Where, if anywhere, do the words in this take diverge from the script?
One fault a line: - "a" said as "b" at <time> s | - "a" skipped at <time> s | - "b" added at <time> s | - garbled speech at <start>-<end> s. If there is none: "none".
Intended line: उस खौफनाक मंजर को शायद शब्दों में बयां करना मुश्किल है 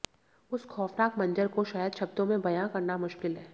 none